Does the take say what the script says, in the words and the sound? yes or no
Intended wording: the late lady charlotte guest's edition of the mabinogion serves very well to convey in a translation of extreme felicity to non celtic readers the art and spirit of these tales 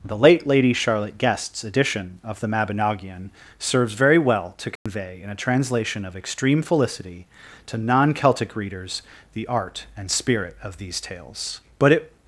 no